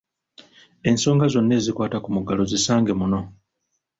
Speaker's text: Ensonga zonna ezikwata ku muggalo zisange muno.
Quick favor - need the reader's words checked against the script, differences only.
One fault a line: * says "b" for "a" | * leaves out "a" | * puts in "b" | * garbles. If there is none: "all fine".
all fine